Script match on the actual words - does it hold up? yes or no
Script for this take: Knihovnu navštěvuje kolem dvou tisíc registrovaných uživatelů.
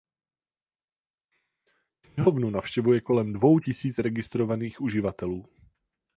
yes